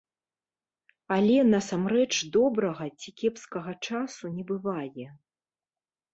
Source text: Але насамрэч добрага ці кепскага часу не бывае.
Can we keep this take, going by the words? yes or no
yes